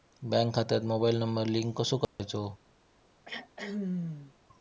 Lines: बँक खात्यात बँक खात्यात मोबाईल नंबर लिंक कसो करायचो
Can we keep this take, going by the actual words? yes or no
no